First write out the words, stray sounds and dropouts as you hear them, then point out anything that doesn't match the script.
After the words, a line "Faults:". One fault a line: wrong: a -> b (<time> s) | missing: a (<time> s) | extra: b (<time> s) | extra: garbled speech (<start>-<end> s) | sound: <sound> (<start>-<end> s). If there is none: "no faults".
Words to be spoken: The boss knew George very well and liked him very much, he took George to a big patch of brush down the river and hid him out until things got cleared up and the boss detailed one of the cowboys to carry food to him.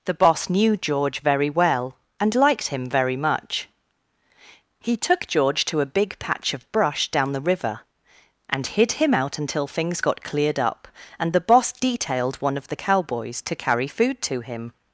The boss knew George very well and liked him very much, he took George to a big patch of brush down the river and hid him out until things got cleared up and the boss detailed one of the cowboys to carry food to him.
Faults:
no faults